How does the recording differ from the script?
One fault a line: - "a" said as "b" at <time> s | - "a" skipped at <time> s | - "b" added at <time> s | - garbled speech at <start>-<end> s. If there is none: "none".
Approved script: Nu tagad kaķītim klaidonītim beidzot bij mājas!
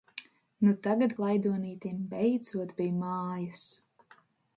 - "kaķītim" skipped at 1.1 s